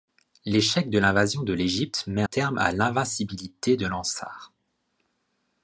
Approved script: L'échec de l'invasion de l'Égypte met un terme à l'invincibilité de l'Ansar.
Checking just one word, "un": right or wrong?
wrong